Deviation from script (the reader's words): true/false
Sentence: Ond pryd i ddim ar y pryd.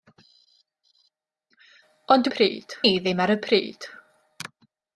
false